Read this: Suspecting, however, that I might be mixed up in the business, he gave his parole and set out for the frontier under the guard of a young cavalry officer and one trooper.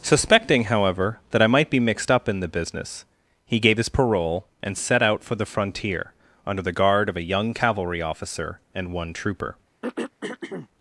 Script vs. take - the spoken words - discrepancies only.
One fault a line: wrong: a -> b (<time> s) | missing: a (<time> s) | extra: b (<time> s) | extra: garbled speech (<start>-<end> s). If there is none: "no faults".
no faults